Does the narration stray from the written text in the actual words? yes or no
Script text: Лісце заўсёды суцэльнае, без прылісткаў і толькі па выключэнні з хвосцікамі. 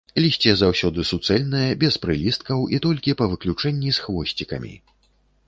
no